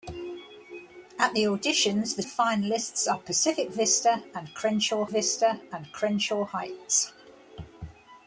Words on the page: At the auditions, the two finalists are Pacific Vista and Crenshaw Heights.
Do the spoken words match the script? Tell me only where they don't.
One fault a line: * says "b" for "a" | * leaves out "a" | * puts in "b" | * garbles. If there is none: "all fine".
* leaves out "two"
* puts in "Vista and Crenshaw"